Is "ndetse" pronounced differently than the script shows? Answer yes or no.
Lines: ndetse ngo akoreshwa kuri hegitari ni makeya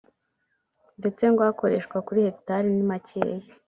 no